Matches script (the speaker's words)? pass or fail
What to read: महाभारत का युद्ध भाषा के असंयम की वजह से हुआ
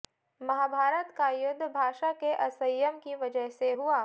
pass